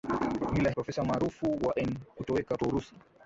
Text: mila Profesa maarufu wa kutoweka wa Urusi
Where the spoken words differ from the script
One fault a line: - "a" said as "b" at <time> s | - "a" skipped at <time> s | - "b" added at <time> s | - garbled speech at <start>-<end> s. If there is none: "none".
none